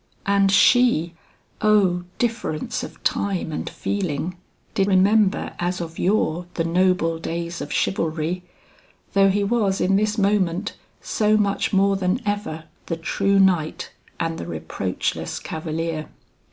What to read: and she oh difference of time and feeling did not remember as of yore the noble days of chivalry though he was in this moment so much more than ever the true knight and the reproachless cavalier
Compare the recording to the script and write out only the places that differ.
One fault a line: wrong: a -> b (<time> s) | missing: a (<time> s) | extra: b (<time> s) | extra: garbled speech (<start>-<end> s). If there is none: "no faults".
missing: not (4.9 s)